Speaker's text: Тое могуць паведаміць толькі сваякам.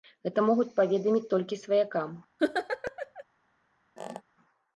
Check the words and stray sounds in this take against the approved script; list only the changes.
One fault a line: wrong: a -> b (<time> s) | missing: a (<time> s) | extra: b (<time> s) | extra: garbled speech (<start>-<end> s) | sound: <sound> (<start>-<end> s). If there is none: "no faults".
wrong: Тое -> Гэта (0.3 s)
sound: laugh (2.4-3.2 s)
sound: squeak (4.0-4.2 s)